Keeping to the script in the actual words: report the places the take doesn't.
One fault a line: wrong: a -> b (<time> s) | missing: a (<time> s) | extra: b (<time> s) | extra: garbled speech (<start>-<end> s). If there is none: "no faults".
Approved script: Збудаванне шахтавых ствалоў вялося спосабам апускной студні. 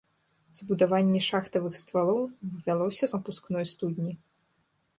missing: спосабам (3.0 s)